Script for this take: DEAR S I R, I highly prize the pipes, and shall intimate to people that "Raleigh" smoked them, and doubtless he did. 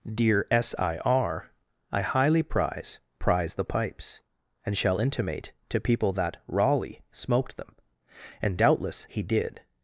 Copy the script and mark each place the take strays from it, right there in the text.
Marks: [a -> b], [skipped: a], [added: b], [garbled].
DEAR S I R, I highly prize [added: prize] the pipes, and shall intimate to people that "Raleigh" smoked them, and doubtless he did.